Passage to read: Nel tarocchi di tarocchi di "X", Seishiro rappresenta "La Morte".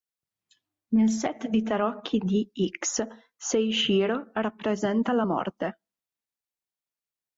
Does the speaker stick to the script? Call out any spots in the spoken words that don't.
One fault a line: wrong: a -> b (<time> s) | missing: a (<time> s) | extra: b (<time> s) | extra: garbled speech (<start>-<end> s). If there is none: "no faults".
wrong: tarocchi -> set (1.1 s)